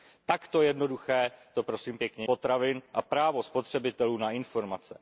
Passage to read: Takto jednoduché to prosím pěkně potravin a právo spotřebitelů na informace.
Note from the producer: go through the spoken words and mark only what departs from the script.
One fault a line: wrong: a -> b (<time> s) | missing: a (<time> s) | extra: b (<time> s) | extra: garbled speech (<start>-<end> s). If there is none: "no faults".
no faults